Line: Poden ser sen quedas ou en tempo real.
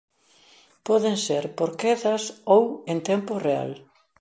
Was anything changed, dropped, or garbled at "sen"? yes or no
yes